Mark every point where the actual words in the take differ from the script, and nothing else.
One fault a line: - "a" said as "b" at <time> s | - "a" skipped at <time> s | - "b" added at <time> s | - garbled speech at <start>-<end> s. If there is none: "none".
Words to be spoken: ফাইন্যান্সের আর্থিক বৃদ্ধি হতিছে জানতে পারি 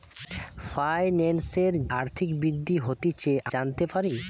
none